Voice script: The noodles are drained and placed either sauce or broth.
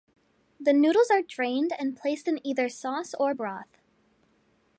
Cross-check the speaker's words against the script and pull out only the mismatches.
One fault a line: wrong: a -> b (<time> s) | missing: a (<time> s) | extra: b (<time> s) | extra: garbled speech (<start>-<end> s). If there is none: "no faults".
extra: in (2.3 s)